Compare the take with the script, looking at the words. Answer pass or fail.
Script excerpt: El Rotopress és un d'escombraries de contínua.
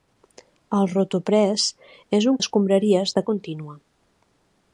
pass